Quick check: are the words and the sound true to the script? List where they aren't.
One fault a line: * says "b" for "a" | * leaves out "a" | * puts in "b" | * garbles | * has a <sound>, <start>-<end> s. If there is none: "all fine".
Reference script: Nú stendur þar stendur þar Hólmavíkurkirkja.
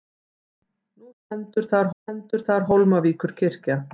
all fine